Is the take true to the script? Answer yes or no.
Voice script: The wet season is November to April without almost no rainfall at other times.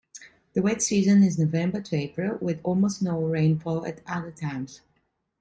no